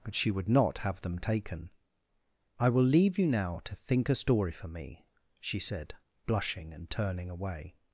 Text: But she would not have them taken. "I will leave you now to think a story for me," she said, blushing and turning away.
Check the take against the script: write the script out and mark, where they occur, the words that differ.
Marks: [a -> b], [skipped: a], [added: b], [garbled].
But she would not have them taken. "I will leave you now to think a story for me," she said, blushing and turning away.